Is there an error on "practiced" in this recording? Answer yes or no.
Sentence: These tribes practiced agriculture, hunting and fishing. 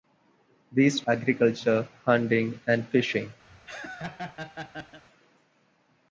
yes